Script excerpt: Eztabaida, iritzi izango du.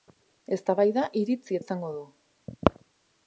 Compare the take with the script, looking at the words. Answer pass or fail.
pass